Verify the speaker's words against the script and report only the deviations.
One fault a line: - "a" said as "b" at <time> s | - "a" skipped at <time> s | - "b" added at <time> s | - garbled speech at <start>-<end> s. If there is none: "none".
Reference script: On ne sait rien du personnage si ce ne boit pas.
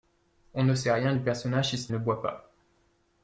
none